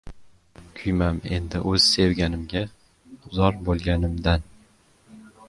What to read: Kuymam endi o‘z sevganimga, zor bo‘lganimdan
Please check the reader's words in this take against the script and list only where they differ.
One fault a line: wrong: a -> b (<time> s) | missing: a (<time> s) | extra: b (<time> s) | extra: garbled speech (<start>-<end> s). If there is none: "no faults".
no faults